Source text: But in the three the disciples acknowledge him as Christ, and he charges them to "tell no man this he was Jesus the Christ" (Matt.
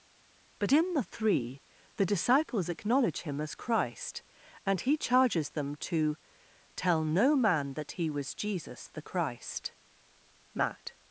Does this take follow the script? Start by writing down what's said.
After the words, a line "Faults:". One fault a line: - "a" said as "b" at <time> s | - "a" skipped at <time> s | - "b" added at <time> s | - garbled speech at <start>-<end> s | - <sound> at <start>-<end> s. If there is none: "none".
But in the three the disciples acknowledge him as Christ, and he charges them to "tell no man that he was Jesus the Christ" (Matt.
Faults:
- "this" said as "that" at 7.7 s